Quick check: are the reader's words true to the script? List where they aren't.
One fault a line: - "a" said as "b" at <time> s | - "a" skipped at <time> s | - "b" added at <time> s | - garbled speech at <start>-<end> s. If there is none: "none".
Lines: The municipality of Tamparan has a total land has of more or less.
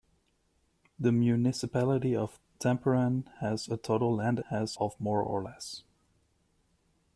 none